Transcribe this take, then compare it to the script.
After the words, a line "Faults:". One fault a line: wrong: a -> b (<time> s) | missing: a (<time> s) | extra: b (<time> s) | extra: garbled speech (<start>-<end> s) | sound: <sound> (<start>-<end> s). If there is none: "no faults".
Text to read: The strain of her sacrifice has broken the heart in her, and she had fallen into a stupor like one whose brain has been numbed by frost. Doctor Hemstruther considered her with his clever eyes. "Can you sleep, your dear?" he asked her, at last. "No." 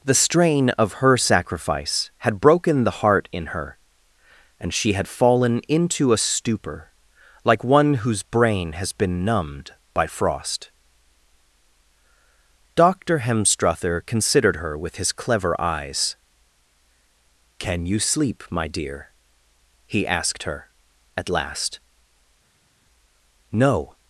The strain of her sacrifice had broken the heart in her, and she had fallen into a stupor like one whose brain has been numbed by frost. Doctor Hemstruther considered her with his clever eyes. "Can you sleep, my dear?" he asked her, at last. "No."
Faults:
wrong: has -> had (2.2 s)
wrong: your -> my (18.5 s)